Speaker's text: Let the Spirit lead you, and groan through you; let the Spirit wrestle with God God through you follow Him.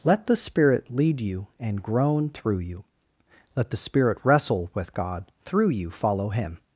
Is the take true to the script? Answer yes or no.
no